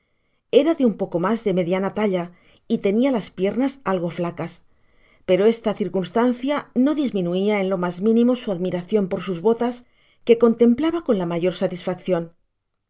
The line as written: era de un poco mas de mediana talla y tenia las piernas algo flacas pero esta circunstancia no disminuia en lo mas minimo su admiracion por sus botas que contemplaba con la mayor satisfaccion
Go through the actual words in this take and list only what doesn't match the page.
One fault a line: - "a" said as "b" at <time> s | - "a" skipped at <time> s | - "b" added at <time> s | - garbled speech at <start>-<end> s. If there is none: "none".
none